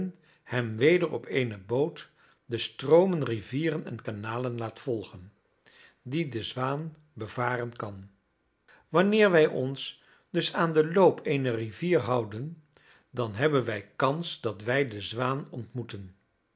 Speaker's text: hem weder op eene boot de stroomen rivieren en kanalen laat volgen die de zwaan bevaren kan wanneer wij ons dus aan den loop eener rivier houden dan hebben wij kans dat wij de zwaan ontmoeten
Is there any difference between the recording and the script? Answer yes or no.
no